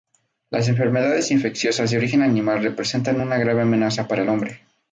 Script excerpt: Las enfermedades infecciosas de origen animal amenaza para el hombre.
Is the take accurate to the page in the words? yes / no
no